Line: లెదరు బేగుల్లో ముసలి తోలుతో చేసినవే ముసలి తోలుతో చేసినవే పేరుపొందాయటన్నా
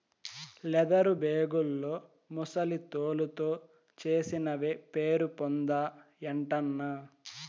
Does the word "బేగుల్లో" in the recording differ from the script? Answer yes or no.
no